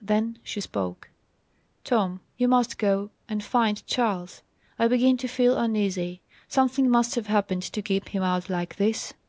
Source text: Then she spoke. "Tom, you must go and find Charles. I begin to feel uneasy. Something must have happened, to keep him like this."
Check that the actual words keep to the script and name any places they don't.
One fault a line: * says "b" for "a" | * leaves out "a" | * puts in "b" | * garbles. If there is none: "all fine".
* puts in "out"